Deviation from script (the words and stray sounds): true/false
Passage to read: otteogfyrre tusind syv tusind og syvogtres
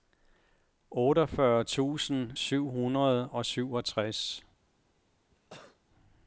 true